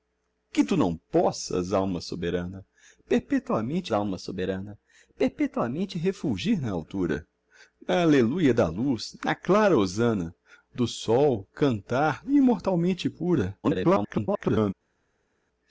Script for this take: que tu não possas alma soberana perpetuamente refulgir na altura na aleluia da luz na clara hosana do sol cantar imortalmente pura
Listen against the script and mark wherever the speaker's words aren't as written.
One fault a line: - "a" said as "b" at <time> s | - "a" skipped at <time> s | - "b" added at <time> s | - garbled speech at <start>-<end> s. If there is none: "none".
- "alma soberana perpetuamente" added at 3.9 s
- garbled speech at 13.6-14.7 s